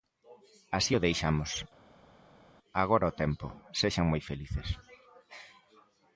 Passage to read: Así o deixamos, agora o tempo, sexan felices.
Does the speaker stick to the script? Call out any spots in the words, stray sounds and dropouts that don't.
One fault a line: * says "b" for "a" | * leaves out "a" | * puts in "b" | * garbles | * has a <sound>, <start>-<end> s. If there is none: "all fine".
* puts in "moi"